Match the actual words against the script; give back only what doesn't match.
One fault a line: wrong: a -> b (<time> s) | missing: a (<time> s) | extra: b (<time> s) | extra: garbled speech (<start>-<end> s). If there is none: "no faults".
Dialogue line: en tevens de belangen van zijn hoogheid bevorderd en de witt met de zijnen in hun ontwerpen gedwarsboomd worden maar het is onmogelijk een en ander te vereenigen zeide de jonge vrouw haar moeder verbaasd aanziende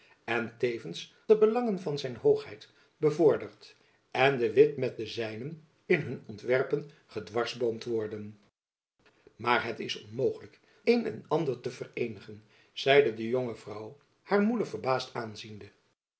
no faults